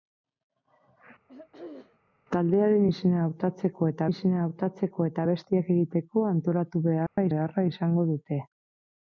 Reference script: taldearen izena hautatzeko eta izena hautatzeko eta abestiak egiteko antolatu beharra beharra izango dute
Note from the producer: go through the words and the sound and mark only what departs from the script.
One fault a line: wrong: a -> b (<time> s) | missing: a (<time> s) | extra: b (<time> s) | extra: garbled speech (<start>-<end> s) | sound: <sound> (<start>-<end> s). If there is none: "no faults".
sound: throat clearing (1.3-2.0 s)
sound: dropout (7.1-7.2 s)